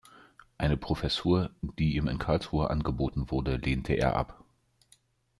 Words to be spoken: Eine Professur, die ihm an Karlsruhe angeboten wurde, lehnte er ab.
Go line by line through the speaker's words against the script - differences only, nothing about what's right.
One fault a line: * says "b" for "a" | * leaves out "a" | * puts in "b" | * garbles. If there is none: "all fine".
* says "in" for "an"